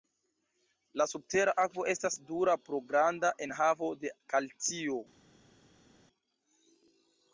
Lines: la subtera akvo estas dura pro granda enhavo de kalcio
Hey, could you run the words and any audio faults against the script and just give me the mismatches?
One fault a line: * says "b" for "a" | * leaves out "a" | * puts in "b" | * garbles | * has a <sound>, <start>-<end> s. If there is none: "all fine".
all fine